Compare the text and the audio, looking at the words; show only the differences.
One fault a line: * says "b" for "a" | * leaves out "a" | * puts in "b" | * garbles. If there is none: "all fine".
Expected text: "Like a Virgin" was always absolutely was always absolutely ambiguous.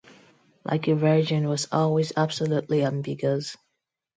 * leaves out "was always absolutely"